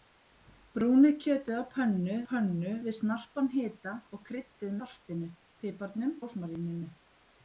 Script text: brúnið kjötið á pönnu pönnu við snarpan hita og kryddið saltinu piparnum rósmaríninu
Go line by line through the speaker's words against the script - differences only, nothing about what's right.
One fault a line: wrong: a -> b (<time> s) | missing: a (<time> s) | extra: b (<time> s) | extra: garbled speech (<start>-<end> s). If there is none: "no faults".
no faults